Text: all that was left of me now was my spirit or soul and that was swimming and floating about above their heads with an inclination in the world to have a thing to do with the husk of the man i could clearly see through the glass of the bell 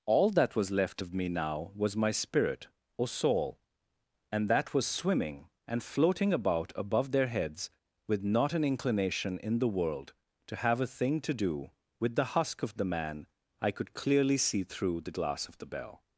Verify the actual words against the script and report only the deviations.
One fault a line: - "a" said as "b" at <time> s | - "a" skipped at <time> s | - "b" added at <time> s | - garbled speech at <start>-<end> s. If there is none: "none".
- "not" added at 8.2 s